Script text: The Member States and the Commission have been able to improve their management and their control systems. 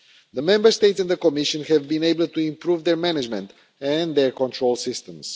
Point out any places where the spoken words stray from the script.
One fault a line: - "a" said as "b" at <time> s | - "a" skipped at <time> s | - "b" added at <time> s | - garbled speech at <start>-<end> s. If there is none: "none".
none